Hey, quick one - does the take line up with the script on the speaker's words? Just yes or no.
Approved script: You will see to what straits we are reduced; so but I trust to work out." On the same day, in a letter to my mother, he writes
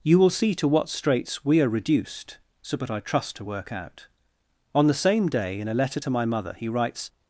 yes